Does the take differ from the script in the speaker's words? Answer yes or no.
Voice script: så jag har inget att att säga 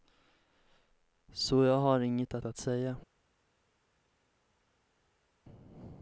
no